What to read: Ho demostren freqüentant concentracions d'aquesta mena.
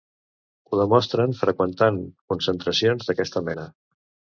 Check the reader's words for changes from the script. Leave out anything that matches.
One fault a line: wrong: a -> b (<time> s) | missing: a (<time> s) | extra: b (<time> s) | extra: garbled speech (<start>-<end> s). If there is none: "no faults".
no faults